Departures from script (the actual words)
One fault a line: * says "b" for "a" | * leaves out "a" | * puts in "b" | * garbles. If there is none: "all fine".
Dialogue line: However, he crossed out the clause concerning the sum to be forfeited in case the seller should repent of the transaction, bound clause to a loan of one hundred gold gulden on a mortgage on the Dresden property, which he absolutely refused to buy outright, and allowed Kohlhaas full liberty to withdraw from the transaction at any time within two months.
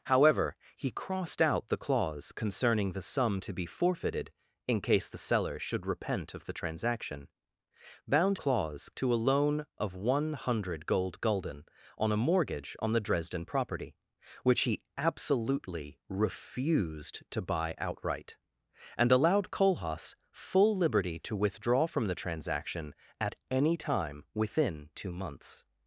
all fine